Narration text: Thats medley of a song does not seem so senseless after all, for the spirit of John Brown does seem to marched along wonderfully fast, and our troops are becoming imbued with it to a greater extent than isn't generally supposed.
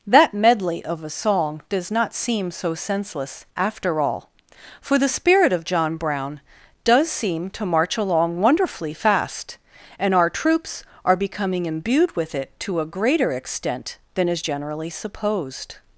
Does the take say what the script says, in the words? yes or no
no